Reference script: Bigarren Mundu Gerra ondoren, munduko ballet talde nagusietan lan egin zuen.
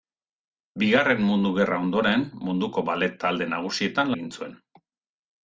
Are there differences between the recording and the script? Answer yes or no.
yes